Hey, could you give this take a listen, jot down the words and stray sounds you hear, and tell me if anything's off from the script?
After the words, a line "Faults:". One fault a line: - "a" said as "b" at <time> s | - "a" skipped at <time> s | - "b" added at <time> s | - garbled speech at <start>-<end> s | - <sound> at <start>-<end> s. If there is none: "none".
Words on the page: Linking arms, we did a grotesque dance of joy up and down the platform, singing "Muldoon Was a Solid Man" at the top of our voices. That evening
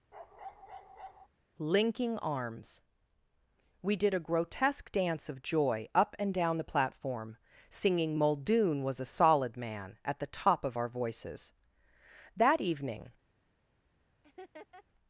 Linking arms, we did a grotesque dance of joy up and down the platform, singing "Muldoon Was a Solid Man" at the top of our voices. That evening
Faults:
- bark at 0.1-1.3 s
- laugh at 14.2-14.8 s